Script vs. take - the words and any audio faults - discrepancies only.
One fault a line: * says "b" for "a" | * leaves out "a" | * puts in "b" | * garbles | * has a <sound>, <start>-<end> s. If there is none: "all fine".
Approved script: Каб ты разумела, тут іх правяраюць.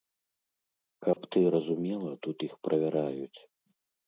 * has a dropout, 1.1-1.2 s